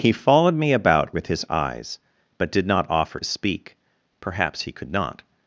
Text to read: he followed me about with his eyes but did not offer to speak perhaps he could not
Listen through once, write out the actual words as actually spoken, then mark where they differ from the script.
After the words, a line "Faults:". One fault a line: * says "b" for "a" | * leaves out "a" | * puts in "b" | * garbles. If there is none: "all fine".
he followed me about with his eyes but did not offer speak perhaps he could not
Faults:
* leaves out "to"